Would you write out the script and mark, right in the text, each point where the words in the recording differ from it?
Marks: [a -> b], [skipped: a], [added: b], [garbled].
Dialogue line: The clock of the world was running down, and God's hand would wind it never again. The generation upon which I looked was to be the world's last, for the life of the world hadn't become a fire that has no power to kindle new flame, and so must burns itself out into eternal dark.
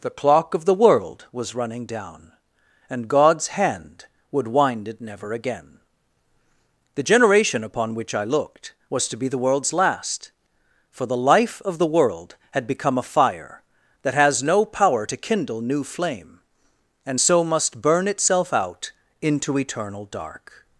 The clock of the world was running down, and God's hand would wind it never again. The generation upon which I looked was to be the world's last, for the life of the world [hadn't -> had] become a fire that has no power to kindle new flame, and so must [burns -> burn] itself out into eternal dark.